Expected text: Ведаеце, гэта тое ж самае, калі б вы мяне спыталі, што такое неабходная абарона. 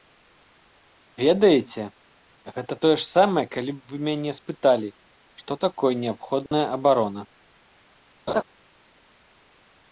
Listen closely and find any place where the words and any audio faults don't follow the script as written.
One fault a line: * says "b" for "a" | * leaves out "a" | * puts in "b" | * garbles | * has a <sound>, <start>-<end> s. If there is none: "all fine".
* has a dropout, 6.5-6.5 s
* has a laugh, 8.3-8.4 s